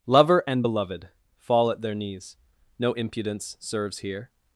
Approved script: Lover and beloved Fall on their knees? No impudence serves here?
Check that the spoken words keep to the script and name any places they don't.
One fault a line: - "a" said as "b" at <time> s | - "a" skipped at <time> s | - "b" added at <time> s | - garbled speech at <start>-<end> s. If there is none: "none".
- "on" said as "at" at 1.7 s